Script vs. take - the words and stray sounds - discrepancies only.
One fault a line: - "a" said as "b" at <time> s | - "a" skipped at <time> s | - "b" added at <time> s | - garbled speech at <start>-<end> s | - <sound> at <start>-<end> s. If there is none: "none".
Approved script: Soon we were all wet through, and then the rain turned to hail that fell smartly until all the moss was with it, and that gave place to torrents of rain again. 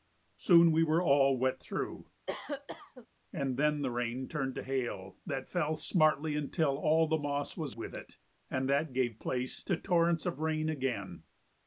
- cough at 2.3-3.1 s